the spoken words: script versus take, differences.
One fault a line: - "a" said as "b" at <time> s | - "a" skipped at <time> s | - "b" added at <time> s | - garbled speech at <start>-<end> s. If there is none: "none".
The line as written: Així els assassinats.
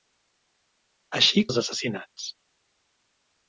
none